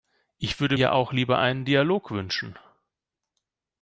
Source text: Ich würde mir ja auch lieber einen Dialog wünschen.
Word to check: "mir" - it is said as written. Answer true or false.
false